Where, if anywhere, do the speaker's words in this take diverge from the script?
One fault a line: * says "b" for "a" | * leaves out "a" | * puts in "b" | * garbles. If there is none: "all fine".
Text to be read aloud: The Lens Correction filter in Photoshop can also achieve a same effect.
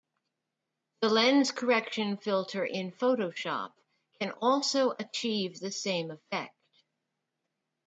* says "the" for "a"